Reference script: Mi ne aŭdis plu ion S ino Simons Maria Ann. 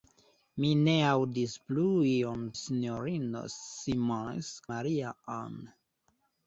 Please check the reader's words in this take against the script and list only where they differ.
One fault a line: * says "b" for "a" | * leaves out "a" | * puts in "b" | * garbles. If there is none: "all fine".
all fine